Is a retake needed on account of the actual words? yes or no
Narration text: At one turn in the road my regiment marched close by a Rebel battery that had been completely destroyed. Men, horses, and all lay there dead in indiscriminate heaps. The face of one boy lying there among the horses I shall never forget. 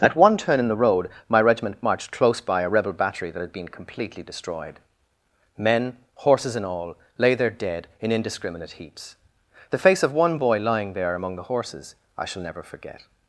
no